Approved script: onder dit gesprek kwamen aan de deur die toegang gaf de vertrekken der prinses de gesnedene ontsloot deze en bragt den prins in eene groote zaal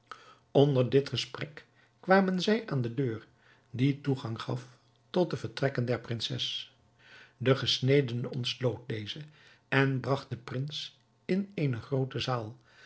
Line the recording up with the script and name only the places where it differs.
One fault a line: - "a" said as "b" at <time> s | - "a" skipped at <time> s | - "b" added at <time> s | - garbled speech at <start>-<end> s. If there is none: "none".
- "zij" added at 2.4 s
- "tot" added at 5.1 s